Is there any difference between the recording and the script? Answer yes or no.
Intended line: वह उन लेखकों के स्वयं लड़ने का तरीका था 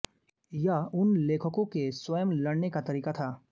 yes